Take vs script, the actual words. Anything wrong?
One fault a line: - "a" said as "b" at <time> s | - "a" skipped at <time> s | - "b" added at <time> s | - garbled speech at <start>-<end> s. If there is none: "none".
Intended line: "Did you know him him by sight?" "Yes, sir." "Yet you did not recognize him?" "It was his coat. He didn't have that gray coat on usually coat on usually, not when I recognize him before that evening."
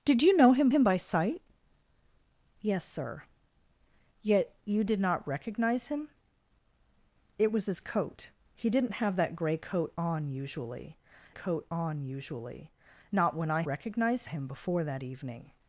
none